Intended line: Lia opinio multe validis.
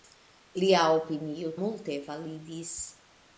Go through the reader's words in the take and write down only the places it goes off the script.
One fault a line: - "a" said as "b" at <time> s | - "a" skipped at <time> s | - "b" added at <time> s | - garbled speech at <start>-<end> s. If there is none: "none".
none